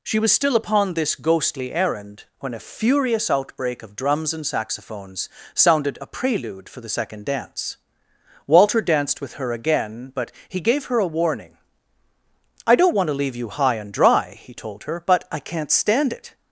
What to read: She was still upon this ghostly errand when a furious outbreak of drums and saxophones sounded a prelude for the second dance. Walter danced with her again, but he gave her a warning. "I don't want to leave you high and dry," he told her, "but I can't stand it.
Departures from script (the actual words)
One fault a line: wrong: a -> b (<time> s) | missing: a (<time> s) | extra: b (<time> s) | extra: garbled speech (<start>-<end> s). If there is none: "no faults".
no faults